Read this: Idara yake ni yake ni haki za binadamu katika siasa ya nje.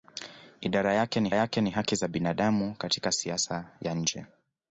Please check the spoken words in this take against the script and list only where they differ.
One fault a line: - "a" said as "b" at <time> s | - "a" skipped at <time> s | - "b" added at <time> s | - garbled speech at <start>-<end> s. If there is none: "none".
none